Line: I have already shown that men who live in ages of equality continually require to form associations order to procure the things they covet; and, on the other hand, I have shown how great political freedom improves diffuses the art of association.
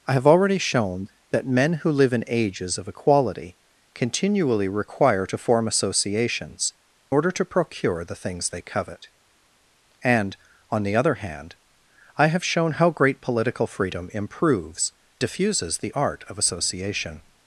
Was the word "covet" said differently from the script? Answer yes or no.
no